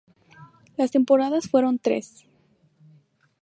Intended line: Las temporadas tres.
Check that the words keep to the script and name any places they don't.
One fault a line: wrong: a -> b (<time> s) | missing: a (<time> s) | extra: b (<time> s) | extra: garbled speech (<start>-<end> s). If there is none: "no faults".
extra: fueron (1.5 s)